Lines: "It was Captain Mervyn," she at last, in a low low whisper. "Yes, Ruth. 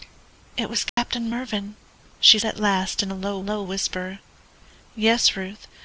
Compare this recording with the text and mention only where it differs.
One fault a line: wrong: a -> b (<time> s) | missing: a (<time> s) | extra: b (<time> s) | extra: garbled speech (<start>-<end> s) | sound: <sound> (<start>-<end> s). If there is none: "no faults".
sound: dropout (0.9-1.0 s)